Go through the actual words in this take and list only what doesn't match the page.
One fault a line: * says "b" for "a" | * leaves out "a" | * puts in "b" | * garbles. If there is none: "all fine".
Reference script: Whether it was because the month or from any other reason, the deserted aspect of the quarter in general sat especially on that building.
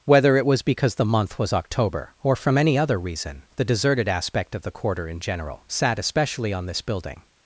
* puts in "was October"
* says "this" for "that"